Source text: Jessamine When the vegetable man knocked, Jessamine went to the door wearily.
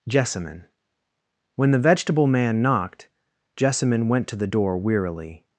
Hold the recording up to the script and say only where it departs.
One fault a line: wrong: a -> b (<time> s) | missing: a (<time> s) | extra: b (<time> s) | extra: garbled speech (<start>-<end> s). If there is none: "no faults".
no faults